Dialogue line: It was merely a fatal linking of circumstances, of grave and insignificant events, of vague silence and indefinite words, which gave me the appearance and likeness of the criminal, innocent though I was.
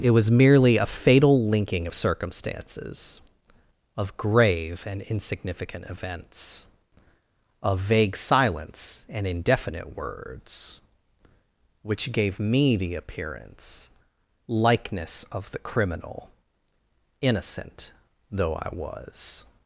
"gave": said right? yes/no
yes